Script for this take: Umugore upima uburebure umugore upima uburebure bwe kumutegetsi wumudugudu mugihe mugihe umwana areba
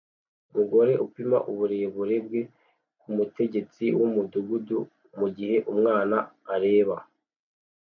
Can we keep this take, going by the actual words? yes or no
no